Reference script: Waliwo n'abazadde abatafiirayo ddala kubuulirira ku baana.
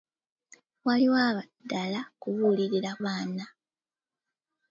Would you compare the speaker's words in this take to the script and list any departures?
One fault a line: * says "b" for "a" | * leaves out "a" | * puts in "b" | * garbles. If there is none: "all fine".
* leaves out "n'abazadde abatafiirayo"
* leaves out "ku"